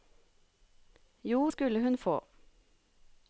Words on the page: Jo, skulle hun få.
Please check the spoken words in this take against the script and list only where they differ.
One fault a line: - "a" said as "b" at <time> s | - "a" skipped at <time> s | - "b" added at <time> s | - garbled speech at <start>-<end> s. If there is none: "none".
none